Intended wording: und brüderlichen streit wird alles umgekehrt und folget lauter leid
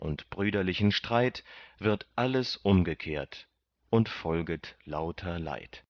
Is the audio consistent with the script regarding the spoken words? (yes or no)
yes